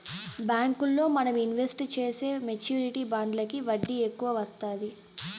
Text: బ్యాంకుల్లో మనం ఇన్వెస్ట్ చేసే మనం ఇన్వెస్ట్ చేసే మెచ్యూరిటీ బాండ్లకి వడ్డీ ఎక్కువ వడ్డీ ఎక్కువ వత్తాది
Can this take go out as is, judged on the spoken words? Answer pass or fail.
fail